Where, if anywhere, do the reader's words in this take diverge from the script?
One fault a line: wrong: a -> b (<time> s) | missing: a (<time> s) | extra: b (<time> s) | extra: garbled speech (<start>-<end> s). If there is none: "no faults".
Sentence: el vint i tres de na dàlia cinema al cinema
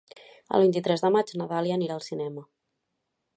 extra: maig (1.2 s)
wrong: cinema -> anirà (1.8 s)